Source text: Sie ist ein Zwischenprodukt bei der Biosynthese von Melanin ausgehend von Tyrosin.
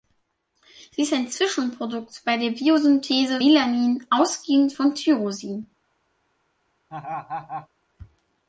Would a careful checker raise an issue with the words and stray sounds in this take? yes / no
yes